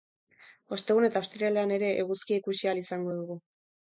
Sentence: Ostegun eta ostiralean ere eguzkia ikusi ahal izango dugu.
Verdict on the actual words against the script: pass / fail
pass